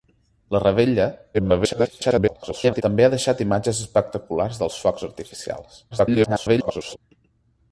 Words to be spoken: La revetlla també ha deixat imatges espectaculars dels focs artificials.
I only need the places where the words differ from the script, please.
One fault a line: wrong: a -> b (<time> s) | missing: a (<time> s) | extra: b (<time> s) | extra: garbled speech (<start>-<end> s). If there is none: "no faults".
extra: garbled speech (1.3-2.8 s)
extra: garbled speech (5.9-7.0 s)